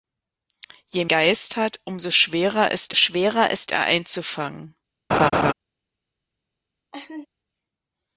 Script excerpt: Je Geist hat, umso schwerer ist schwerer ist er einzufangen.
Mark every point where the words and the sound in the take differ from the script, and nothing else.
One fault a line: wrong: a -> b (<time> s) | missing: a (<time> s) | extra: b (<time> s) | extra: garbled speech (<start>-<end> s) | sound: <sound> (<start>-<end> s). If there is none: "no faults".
sound: laugh (5.1-5.5 s)
sound: laugh (6.9-7.3 s)